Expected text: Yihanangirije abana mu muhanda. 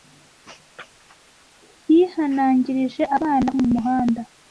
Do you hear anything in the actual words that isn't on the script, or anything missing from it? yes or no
no